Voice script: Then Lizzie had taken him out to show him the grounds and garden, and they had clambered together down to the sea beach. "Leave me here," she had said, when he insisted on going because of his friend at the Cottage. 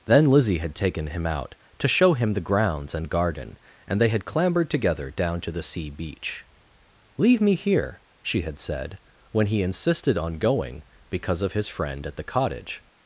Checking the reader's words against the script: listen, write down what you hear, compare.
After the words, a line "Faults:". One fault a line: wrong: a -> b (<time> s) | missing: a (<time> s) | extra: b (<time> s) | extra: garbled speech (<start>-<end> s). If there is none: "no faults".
Then Lizzie had taken him out to show him the grounds and garden, and they had clambered together down to the sea beach. "Leave me here," she had said, when he insisted on going because of his friend at the Cottage.
Faults:
no faults